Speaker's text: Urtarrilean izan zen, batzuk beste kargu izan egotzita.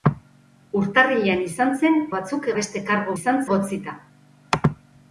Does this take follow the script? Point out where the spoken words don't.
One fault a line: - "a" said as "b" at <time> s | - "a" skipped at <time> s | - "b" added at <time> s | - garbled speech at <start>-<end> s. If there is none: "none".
none